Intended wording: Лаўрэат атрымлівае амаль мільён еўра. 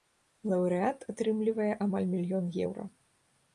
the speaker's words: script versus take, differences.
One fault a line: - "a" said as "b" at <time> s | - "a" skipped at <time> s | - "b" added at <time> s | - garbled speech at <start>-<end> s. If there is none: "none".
none